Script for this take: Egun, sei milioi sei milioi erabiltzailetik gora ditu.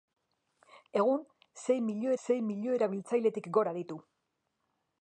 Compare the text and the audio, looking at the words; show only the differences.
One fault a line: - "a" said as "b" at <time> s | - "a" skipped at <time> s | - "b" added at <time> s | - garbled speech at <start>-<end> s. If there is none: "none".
none